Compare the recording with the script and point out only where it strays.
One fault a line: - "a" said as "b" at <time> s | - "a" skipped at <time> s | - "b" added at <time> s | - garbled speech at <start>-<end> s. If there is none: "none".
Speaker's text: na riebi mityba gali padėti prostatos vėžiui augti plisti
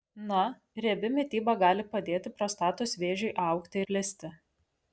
none